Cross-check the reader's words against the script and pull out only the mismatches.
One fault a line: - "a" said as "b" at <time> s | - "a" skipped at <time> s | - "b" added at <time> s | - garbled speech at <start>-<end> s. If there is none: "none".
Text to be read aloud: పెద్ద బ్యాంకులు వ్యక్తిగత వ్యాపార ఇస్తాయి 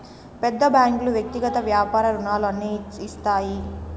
- "రుణాలు అన్ని" added at 2.1 s